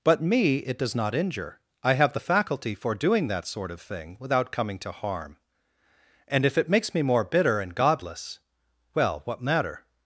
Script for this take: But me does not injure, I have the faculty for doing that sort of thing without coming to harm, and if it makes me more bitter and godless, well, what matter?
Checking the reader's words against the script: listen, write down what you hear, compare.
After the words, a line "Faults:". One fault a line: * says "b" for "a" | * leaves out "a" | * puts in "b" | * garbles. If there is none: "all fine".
But me it does not injure, I have the faculty for doing that sort of thing without coming to harm, and if it makes me more bitter and godless, well, what matter?
Faults:
* puts in "it"